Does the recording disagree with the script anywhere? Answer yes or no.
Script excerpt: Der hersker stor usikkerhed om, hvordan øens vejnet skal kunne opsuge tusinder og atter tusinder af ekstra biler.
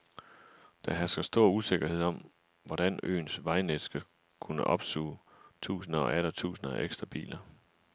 no